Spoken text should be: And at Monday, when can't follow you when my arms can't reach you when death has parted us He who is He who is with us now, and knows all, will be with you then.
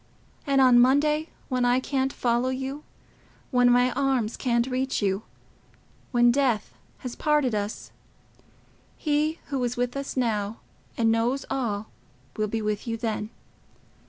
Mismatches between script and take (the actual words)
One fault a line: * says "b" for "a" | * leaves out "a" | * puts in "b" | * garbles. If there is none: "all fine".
* says "on" for "at"
* puts in "I"
* leaves out "He who is"